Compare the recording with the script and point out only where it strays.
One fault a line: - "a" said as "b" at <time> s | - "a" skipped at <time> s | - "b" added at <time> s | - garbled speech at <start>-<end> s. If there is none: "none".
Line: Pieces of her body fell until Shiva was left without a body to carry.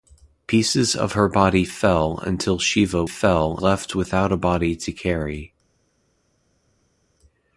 - "was" said as "fell" at 3.0 s